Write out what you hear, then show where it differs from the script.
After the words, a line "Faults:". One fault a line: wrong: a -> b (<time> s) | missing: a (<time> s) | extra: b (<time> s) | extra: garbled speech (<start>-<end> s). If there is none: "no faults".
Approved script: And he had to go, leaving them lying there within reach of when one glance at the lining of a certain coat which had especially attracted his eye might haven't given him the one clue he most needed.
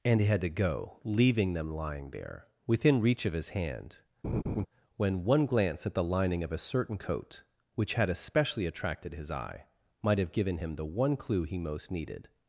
And he had to go, leaving them lying there within reach of his hand, when one glance at the lining of a certain coat which had especially attracted his eye might have given him the one clue he most needed.
Faults:
extra: his hand (3.3 s)
wrong: haven't -> have (10.2 s)